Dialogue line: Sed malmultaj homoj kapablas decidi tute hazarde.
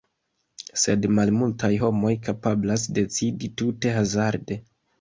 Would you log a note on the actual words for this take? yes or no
no